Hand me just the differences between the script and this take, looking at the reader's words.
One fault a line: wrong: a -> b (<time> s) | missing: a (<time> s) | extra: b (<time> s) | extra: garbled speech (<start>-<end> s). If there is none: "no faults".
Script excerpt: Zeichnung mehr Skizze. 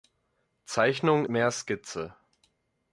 no faults